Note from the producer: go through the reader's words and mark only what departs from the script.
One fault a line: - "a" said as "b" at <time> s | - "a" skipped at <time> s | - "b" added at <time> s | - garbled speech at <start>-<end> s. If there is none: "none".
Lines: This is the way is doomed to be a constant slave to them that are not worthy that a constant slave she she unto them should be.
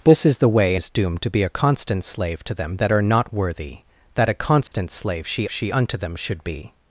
none